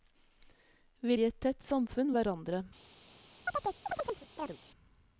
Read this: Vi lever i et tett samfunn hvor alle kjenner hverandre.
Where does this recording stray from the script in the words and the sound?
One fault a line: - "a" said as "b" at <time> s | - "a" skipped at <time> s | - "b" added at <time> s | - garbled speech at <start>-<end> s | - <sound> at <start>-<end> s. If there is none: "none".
- "lever" skipped at 1.2 s
- "hvor alle kjenner" skipped at 2.1 s
- chirp at 3.5-4.6 s